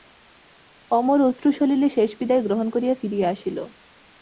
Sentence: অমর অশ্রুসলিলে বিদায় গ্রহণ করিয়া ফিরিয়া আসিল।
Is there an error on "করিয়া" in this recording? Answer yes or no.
no